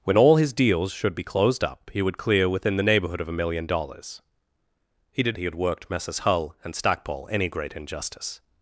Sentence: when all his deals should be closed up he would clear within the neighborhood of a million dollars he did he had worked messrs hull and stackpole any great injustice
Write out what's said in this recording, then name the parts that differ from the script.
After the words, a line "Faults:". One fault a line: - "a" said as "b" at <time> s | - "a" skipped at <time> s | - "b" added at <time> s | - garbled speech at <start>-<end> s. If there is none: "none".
when all his deals should be closed up he would clear within the neighborhood of a million dollars he did he had worked messrs hull and stackpole any great injustice
Faults:
none